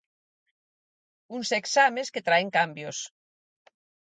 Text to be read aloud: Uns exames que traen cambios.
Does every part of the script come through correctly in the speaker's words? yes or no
yes